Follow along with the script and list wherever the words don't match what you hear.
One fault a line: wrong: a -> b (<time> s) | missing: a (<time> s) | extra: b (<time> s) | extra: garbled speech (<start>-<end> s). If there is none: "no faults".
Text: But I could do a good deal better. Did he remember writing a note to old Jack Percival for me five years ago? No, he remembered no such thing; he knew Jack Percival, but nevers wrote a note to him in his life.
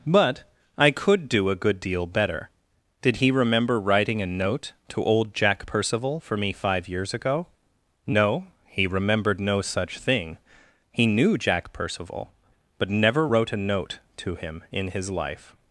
wrong: nevers -> never (12.9 s)